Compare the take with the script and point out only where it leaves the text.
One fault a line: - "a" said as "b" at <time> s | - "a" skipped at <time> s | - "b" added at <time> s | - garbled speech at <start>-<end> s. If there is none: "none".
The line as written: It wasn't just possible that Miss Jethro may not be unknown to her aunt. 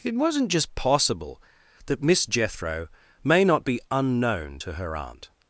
none